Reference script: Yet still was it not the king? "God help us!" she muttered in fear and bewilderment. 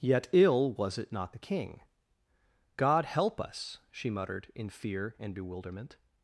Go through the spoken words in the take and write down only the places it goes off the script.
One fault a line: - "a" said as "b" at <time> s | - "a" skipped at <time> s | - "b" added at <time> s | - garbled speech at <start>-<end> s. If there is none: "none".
- "still" said as "ill" at 0.3 s